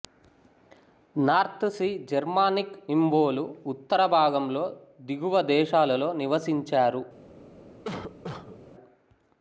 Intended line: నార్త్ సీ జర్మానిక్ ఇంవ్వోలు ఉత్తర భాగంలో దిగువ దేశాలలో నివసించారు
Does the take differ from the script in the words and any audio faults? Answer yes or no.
yes